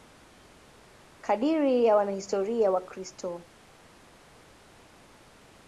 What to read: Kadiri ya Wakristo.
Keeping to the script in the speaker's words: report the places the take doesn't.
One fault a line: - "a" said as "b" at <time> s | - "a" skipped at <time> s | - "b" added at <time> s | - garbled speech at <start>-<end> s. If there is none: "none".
- "wanahistoria" added at 1.9 s